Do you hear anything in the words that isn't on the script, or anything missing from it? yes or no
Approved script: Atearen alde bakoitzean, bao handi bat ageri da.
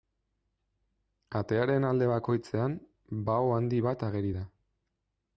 no